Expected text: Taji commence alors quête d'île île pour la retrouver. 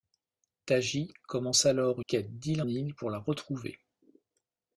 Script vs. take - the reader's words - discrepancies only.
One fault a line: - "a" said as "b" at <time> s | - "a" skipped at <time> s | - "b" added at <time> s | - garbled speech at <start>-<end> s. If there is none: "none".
none